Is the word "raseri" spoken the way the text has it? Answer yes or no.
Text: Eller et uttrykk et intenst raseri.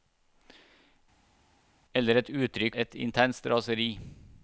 yes